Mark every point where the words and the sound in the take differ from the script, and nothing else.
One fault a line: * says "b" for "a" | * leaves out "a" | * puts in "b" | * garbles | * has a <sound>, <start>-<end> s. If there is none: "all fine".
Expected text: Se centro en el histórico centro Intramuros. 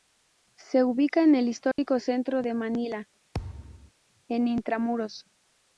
* says "ubica" for "centro"
* has a dropout, 1.7-1.8 s
* puts in "de Manila en"
* has a thud, 3.3-3.9 s